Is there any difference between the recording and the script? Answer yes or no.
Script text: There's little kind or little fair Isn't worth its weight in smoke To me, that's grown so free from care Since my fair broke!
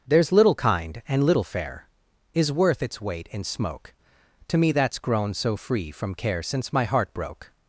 yes